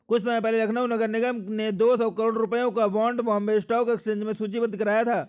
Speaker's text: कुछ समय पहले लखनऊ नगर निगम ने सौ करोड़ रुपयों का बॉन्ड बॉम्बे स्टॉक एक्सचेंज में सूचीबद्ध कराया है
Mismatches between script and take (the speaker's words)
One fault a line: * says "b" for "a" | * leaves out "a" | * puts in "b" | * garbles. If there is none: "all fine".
* puts in "दो"
* says "था" for "है"